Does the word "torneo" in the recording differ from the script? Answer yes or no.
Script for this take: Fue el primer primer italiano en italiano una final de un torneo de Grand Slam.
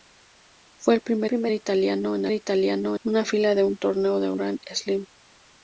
no